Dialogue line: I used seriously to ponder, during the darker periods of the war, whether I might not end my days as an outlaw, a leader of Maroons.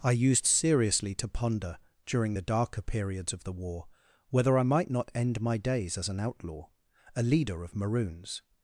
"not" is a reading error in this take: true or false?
false